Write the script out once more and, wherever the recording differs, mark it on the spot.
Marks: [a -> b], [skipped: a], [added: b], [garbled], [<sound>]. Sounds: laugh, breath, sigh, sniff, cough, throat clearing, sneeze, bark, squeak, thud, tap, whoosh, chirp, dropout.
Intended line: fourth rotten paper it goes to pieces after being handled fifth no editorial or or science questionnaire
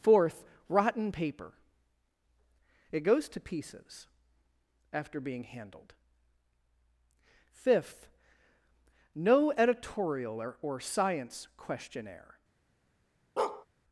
fourth rotten paper it goes to pieces after being handled fifth no editorial or or science questionnaire [bark]